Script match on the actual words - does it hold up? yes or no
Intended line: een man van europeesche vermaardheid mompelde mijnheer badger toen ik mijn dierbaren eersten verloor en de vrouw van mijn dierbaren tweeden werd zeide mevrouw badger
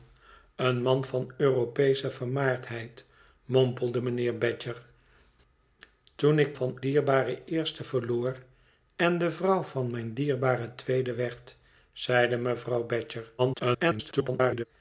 no